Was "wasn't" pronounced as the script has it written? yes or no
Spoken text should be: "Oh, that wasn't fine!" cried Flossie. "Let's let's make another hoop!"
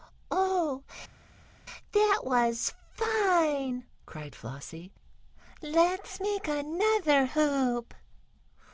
no